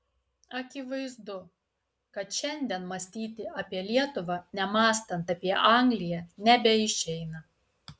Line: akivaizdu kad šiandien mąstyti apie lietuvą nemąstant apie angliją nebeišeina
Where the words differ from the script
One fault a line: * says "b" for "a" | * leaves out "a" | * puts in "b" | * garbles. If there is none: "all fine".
all fine